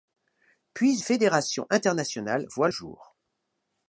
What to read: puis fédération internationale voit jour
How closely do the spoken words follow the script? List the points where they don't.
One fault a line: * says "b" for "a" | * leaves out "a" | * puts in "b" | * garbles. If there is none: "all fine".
all fine